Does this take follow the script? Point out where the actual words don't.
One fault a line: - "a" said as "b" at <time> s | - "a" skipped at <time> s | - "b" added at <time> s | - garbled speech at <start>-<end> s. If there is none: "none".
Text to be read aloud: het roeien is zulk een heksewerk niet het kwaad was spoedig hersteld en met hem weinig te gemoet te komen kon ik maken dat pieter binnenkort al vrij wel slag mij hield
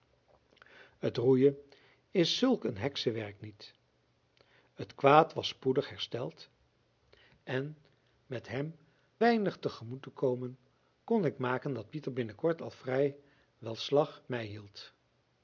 none